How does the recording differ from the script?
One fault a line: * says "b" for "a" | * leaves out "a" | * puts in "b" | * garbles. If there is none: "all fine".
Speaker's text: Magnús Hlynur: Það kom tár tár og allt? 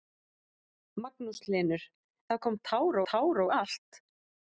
all fine